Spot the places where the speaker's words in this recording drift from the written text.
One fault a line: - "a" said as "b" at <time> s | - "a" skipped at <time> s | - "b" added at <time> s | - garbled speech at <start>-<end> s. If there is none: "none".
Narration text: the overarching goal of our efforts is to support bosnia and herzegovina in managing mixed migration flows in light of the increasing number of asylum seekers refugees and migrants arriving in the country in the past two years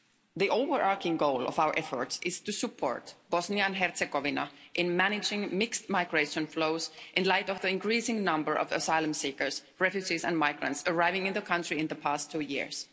none